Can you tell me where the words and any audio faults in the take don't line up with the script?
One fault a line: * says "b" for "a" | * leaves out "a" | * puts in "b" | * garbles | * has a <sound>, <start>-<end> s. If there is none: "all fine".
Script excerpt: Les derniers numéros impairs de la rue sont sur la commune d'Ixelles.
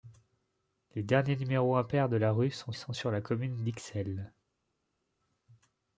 * puts in "sont"